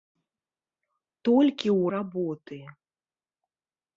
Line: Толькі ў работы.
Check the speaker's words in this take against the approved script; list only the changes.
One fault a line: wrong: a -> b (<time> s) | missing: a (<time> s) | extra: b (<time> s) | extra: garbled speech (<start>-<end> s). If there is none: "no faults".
no faults